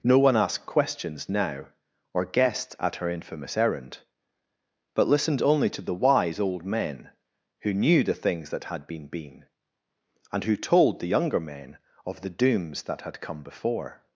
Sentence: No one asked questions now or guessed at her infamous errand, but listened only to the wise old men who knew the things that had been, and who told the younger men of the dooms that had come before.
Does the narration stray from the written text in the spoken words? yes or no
yes